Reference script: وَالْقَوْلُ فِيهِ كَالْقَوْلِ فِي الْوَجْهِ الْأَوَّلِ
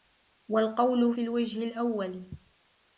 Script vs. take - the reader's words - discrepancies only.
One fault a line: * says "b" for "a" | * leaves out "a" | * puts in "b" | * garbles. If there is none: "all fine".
* leaves out "فِيهِ كَالْقَوْلِ"